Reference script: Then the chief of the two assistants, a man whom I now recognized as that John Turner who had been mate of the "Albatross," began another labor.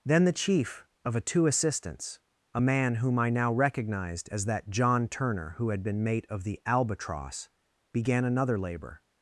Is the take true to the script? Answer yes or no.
no